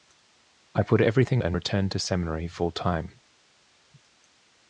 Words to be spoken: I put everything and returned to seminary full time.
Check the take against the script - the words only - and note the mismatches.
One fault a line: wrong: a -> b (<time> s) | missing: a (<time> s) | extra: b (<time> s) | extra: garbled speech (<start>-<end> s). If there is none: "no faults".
no faults